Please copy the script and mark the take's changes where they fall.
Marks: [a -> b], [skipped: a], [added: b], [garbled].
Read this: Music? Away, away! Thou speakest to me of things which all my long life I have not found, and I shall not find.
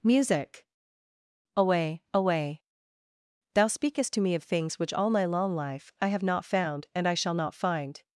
Music? Away, away! Thou speakest to me of things which all my long life I have not found, and I shall not find.